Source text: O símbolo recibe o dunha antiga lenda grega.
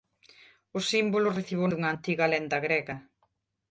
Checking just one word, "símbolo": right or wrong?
right